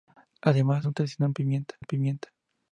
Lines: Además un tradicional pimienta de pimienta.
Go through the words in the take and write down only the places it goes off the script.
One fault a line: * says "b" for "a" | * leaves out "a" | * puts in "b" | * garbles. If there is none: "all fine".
all fine